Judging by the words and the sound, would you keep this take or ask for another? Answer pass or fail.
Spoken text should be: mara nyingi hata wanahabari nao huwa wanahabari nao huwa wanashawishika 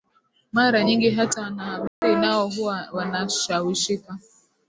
fail